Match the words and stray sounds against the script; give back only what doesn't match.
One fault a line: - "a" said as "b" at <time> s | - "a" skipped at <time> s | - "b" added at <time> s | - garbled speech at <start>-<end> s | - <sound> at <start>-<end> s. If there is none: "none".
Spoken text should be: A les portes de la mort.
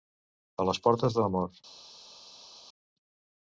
none